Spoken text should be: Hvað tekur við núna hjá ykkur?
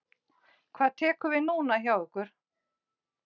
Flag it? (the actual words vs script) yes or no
no